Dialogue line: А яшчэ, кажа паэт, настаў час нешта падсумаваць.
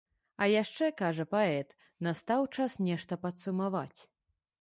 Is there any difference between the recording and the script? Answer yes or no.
no